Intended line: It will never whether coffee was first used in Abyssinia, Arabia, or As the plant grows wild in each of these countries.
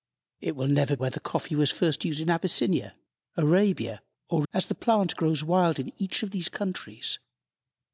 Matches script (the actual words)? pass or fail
pass